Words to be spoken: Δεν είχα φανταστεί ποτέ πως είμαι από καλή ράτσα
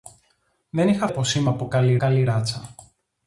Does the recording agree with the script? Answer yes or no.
no